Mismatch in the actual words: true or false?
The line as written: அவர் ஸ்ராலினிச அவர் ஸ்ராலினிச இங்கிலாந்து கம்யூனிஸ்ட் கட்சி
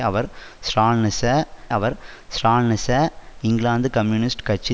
false